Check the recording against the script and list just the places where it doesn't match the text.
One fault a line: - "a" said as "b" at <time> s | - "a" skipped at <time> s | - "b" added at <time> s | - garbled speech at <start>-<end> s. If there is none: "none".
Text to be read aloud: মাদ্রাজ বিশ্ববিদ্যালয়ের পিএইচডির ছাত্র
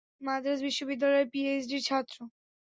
none